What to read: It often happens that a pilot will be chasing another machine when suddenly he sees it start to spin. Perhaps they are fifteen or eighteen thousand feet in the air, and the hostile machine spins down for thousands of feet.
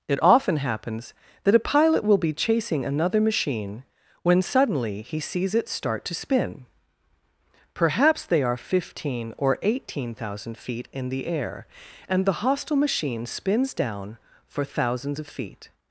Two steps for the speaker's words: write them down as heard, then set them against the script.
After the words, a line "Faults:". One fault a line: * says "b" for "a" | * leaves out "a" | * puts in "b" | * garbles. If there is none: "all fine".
It often happens that a pilot will be chasing another machine when suddenly he sees it start to spin. Perhaps they are fifteen or eighteen thousand feet in the air, and the hostile machine spins down for thousands of feet.
Faults:
all fine